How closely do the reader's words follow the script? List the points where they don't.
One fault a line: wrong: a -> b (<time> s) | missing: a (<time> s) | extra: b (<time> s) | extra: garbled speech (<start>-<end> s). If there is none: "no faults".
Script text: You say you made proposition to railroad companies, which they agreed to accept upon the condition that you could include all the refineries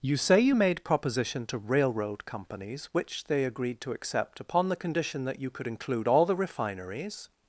no faults